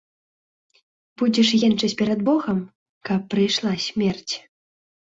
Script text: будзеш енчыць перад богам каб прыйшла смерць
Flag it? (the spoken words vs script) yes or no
no